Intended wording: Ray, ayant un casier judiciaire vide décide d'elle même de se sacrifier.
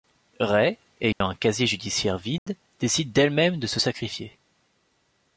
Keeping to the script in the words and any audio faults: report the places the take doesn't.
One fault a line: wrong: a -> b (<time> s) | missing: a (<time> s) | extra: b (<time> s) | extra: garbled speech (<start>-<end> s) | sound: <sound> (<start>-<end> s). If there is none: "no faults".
sound: dropout (1.1-1.2 s)
sound: dropout (2.4-2.5 s)